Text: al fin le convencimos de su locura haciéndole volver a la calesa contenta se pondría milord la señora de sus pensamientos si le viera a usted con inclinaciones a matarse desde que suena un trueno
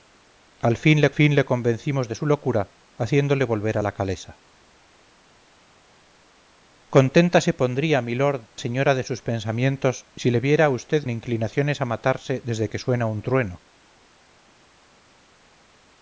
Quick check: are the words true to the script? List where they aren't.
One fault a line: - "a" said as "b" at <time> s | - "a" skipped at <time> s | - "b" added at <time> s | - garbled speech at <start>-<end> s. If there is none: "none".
- "fin le" added at 1.1 s
- "la" skipped at 8.5 s
- "con" skipped at 11.0 s